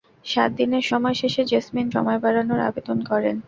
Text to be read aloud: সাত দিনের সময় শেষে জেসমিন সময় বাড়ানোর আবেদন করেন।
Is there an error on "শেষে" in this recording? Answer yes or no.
no